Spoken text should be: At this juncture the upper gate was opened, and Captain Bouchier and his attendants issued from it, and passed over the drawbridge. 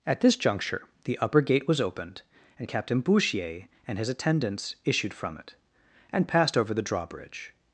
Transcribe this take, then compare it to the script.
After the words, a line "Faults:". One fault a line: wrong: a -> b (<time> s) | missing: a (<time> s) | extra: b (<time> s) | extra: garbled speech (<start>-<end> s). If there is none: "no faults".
At this juncture the upper gate was opened, and Captain Bouchier and his attendants issued from it, and passed over the drawbridge.
Faults:
no faults